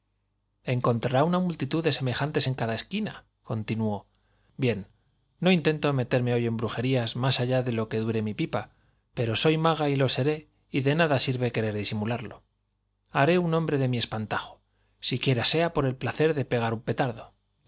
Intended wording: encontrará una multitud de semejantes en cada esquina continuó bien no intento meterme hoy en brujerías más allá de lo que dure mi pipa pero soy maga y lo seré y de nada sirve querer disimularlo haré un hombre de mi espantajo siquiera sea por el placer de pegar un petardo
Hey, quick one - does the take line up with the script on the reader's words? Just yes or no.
yes